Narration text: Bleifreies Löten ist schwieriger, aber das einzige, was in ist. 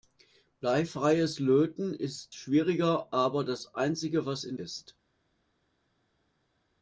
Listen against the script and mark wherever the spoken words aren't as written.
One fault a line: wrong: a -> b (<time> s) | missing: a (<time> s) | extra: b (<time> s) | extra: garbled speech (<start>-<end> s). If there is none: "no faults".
no faults